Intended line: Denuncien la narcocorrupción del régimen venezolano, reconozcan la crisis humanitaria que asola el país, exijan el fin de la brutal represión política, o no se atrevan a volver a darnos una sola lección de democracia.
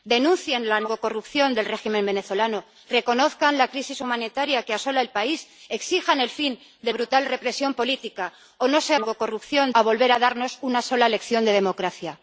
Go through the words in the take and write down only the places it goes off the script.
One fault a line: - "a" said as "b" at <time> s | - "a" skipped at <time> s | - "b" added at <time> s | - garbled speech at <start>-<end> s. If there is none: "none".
- "la" skipped at 6.9 s
- "atrevan" said as "narcocorrupción" at 9.0 s